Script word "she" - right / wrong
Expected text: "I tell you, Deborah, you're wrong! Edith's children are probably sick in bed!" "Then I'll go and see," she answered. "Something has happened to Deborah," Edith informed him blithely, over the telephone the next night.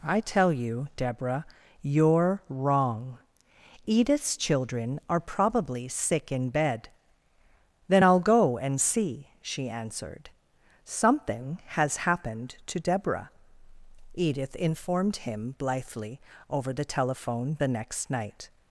right